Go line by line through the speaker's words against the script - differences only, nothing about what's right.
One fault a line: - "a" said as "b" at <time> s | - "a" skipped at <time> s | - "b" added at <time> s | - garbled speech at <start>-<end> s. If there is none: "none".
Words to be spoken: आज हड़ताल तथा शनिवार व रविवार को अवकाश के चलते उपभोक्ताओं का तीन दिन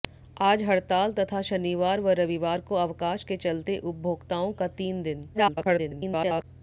- garbled speech at 5.3-6.4 s